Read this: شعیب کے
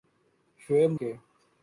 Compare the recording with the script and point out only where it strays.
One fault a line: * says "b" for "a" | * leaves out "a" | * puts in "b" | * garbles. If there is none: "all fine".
all fine